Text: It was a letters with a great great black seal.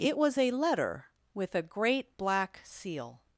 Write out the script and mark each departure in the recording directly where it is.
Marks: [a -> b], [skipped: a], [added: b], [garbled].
It was a [letters -> letter] with a great [skipped: great] black seal.